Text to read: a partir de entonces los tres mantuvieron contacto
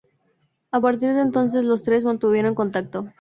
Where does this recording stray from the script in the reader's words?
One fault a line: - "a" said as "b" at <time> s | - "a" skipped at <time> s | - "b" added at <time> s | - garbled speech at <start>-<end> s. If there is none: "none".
none